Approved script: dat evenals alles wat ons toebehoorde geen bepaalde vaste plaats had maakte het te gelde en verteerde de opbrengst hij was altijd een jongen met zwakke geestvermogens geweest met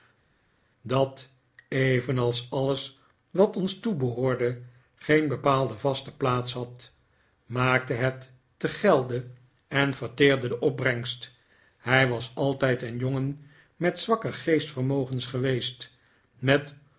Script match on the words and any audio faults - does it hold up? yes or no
yes